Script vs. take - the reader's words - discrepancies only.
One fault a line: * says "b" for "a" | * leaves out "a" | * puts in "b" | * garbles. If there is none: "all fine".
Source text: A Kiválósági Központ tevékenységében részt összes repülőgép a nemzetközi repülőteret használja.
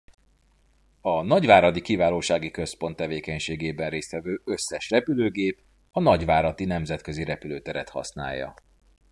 * puts in "nagyváradi"
* puts in "vevő"
* puts in "nagyváradi"